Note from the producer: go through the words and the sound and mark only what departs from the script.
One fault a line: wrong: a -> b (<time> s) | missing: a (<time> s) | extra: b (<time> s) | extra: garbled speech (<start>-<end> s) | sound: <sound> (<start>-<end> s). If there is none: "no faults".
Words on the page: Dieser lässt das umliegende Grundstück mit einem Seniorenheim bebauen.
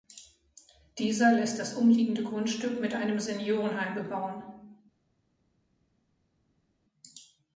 no faults